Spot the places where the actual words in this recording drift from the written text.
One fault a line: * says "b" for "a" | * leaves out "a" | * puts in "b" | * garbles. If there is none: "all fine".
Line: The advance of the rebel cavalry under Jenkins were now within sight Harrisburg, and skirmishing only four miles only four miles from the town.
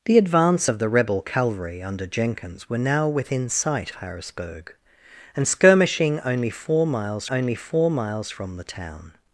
all fine